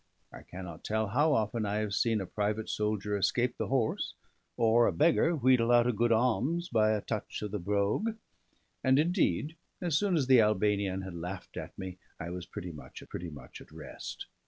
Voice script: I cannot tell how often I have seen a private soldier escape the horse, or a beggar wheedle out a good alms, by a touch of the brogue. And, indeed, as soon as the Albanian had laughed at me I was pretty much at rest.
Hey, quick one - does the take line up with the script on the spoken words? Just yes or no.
no